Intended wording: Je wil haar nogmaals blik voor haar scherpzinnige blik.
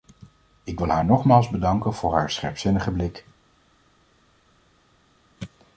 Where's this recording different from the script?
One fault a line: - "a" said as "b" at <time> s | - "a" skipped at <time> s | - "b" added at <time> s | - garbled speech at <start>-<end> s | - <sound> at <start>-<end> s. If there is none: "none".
- "Je" said as "Ik" at 0.6 s
- "blik" said as "bedanken" at 1.5 s